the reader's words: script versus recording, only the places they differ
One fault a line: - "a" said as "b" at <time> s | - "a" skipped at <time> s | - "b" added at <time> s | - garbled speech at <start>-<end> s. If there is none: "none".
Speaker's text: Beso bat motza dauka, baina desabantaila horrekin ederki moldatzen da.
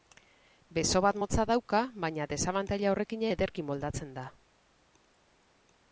none